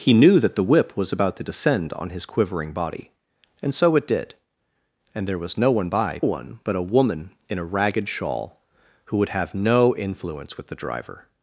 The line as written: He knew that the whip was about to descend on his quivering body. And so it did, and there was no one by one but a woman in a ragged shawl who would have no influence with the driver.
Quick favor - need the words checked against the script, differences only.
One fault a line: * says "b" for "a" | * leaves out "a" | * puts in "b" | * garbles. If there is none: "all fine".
all fine